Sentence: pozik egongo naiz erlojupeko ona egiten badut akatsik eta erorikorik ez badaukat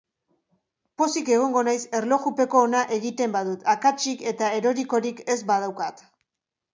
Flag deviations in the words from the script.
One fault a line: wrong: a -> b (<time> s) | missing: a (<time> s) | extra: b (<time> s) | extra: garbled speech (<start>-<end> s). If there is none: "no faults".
no faults